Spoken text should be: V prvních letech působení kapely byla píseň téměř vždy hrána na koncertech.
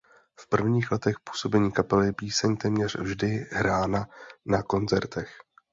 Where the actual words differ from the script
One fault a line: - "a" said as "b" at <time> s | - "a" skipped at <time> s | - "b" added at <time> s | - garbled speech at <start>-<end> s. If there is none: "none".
- "byla" skipped at 2.1 s